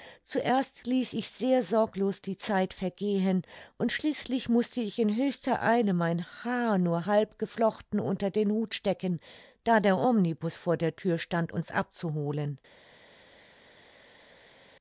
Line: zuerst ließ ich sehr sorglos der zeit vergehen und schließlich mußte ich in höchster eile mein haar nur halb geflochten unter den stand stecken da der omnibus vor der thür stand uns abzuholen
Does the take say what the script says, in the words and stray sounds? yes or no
no